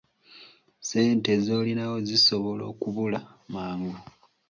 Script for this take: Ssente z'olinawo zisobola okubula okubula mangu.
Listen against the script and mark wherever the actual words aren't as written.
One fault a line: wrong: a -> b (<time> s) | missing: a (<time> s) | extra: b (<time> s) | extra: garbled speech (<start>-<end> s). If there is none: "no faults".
missing: okubula (3.2 s)